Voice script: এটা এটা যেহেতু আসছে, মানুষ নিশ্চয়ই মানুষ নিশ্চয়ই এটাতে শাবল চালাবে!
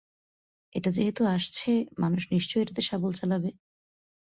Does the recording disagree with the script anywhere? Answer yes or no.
yes